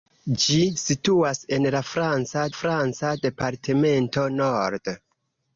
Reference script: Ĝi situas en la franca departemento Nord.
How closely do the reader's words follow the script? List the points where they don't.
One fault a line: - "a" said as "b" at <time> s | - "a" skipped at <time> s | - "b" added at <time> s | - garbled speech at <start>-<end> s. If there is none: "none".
- "franca" added at 2.6 s